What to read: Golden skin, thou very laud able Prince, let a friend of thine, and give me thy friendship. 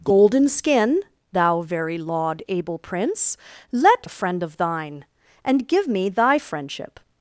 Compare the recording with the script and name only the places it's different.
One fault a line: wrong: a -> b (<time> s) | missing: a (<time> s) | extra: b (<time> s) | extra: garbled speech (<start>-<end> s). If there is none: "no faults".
no faults